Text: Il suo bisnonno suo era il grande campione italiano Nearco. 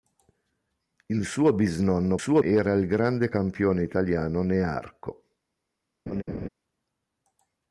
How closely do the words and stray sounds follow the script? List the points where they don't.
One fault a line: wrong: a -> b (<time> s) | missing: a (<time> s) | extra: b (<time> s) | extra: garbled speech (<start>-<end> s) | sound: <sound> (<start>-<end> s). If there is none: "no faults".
sound: laugh (6.1-6.5 s)